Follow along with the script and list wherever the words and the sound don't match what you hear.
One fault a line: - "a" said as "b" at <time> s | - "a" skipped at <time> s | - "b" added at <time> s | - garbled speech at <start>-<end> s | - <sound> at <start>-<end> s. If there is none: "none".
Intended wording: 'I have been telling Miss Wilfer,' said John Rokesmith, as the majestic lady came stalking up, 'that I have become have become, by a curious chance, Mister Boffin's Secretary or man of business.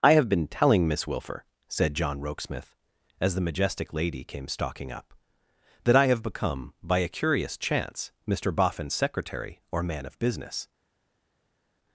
- "have become" skipped at 6.7 s